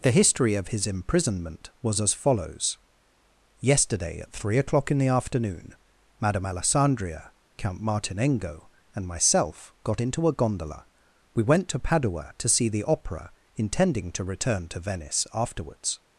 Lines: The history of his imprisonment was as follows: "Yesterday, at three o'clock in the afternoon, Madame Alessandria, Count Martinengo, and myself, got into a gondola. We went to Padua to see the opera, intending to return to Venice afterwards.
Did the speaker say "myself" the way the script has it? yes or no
yes